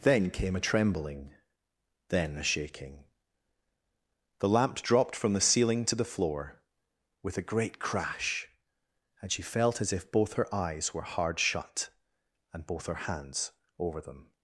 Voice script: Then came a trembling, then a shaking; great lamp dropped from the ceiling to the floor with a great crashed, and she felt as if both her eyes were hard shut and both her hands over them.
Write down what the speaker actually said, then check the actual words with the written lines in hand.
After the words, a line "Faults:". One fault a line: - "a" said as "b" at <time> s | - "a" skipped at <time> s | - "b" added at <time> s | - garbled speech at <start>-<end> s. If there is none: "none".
Then came a trembling, then a shaking; the lamp dropped from the ceiling to the floor with a great crash, and she felt as if both her eyes were hard shut and both her hands over them.
Faults:
- "great" said as "the" at 4.4 s
- "crashed" said as "crash" at 7.8 s